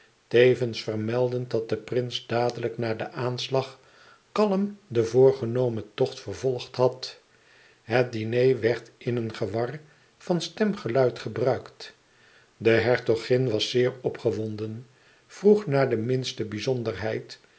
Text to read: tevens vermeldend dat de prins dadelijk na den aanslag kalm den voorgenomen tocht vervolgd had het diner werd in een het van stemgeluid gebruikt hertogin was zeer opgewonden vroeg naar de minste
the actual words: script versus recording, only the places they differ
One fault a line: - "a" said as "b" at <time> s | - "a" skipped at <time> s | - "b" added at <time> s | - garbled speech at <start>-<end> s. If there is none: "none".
- "het" said as "gewar" at 9.3 s
- "de" added at 12.6 s